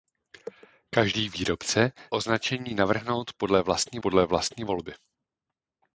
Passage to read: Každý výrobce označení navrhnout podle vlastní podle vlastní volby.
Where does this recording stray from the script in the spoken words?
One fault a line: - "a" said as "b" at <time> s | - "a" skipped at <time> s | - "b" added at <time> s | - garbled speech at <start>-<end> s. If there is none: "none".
none